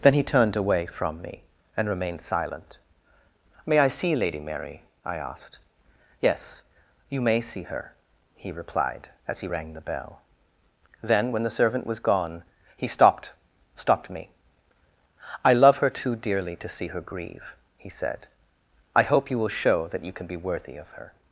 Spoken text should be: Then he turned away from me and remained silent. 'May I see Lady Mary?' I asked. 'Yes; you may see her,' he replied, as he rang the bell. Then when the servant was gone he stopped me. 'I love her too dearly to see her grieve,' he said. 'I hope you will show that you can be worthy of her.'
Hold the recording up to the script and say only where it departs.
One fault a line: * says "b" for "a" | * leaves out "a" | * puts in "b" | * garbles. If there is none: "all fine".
* puts in "stopped"